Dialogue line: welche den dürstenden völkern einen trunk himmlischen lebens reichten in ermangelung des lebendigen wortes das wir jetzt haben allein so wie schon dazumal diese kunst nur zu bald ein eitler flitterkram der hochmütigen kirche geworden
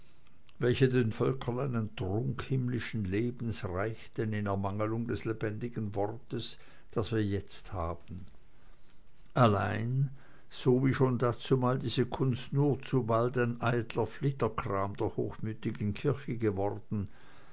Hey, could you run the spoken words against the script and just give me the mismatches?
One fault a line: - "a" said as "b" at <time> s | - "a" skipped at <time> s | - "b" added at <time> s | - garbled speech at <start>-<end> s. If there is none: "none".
- "dürstenden" skipped at 1.1 s